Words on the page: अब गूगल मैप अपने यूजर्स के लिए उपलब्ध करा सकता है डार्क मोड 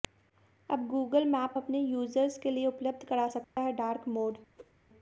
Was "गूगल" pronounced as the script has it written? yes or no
yes